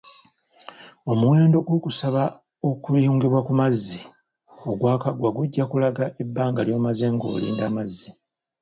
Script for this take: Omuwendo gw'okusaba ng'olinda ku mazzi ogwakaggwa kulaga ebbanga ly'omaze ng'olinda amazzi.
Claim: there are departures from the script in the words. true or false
true